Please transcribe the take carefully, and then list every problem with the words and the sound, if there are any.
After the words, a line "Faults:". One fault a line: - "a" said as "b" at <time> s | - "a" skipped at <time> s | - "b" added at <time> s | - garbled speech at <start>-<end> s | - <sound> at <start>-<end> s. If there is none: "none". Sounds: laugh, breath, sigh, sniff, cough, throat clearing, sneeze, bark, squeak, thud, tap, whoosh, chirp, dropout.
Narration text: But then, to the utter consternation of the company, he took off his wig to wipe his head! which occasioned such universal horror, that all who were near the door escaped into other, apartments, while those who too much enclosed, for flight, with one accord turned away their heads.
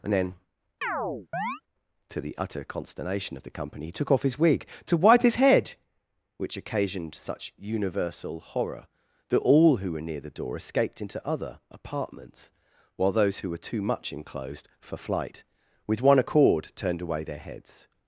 And then, to the utter consternation of the company, he took off his wig to wipe his head! which occasioned such universal horror, that all who were near the door escaped into other, apartments, while those who were too much enclosed, for flight, with one accord turned away their heads.
Faults:
- "But" said as "And" at 0.0 s
- chirp at 0.8-1.6 s
- "were" added at 13.5 s